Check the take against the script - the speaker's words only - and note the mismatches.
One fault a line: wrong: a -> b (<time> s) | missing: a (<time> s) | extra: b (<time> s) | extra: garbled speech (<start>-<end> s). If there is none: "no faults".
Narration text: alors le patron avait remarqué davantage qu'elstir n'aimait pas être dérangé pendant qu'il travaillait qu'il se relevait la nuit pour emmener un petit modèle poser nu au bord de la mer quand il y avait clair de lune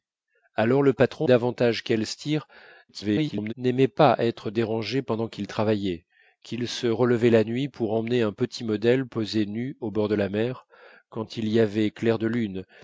missing: avait remarqué (1.3 s)
extra: garbled speech (2.9-3.5 s)